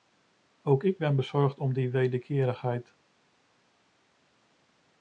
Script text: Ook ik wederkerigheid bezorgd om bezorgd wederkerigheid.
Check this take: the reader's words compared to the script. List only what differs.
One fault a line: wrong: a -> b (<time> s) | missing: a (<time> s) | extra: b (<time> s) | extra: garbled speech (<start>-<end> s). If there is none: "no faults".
wrong: wederkerigheid -> ben (1.0 s)
wrong: bezorgd -> die (1.7 s)